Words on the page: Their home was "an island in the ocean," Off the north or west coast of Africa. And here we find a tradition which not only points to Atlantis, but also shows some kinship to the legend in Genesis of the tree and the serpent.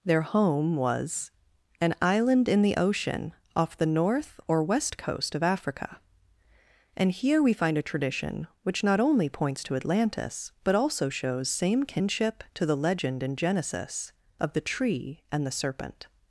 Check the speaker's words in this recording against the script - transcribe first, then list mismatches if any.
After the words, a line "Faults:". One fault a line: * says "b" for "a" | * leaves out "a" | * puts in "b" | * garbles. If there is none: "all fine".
Their home was "an island in the ocean," Off the north or west coast of Africa. And here we find a tradition which not only points to Atlantis, but also shows same kinship to the legend in Genesis of the tree and the serpent.
Faults:
* says "same" for "some"